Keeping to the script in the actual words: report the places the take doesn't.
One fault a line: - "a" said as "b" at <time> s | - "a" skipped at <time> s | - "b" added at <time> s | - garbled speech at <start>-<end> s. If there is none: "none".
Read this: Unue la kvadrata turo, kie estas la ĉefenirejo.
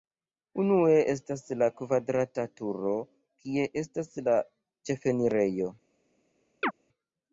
- "estas" added at 1.1 s